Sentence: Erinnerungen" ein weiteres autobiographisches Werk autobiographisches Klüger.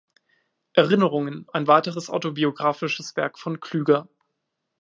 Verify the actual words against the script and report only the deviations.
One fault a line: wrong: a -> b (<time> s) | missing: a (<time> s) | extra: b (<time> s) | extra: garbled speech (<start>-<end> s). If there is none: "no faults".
wrong: autobiographisches -> von (3.4 s)